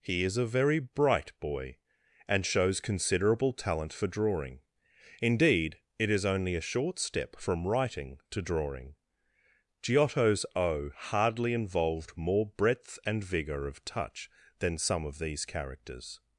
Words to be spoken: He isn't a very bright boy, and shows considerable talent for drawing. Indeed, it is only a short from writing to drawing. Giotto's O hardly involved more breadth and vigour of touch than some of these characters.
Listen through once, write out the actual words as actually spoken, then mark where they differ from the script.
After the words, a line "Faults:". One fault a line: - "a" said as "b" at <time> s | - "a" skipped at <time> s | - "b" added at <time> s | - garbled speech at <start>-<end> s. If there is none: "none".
He is a very bright boy, and shows considerable talent for drawing. Indeed, it is only a short step from writing to drawing. Giotto's O hardly involved more breadth and vigour of touch than some of these characters.
Faults:
- "isn't" said as "is" at 0.2 s
- "step" added at 7.0 s